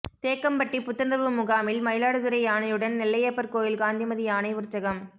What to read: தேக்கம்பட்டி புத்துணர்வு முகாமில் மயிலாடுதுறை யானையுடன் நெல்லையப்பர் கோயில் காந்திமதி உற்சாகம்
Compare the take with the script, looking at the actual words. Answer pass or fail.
fail